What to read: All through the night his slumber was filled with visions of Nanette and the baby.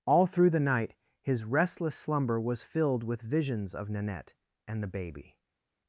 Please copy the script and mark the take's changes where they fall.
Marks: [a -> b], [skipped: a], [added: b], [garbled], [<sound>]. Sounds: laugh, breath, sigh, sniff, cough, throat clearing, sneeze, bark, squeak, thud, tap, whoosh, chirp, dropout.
All through the night his [added: restless] slumber was filled with visions of Nanette and the baby.